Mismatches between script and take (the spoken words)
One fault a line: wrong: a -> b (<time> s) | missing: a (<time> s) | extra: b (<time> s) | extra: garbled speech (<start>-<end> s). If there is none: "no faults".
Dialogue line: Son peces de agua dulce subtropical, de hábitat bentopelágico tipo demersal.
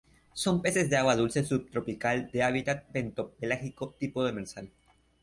no faults